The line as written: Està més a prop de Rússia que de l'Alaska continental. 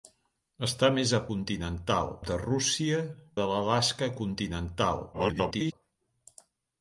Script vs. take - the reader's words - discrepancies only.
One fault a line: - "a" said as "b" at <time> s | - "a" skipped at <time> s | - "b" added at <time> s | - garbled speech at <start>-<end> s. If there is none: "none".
- "prop" said as "continental" at 1.3 s
- "que" skipped at 3.0 s
- garbled speech at 5.1-5.7 s